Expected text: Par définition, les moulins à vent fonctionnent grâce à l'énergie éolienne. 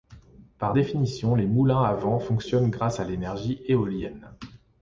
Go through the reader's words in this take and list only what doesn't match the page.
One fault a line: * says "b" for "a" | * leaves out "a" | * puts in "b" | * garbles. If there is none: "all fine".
all fine